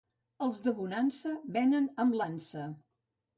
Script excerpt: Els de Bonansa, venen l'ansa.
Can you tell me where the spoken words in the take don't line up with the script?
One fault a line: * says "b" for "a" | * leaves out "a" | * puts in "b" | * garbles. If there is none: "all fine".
* puts in "amb"